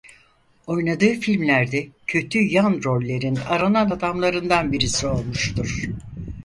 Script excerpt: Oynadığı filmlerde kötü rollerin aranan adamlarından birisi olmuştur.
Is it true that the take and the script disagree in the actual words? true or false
true